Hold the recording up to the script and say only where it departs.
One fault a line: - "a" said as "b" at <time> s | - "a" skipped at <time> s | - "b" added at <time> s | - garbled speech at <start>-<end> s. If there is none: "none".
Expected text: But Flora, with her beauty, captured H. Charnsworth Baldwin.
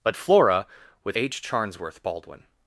- "her beauty captured" skipped at 1.2 s